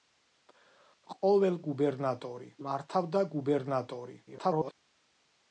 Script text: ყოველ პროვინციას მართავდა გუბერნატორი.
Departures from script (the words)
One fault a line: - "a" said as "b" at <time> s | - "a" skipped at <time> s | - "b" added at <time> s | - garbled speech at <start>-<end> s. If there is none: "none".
- "პროვინციას" said as "გუბერნატორი" at 1.7 s
- garbled speech at 4.3-4.7 s